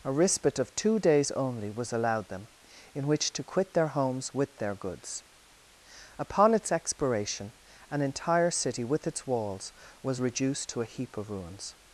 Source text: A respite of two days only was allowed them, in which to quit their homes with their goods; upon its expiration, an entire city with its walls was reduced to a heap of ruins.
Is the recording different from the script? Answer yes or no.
no